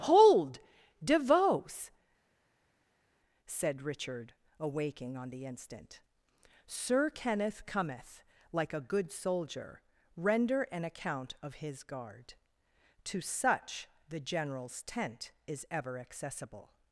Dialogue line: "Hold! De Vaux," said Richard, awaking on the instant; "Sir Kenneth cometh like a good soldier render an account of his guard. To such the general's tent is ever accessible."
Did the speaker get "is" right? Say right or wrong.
right